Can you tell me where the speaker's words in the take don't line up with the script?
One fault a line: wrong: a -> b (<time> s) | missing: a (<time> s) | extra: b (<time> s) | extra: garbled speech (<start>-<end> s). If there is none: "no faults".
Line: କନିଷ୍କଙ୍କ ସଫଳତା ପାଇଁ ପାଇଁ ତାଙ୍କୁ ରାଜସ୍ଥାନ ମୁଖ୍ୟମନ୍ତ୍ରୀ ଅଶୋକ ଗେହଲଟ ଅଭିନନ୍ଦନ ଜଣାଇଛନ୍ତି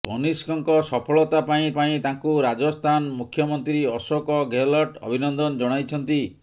no faults